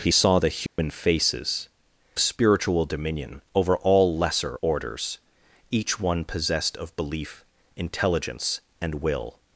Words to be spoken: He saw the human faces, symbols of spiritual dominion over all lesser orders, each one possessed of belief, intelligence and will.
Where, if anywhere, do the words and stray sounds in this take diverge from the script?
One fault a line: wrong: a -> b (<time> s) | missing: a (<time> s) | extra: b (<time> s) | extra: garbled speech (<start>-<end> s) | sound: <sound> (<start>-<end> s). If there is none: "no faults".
sound: dropout (0.7-0.8 s)
missing: symbols of (1.7 s)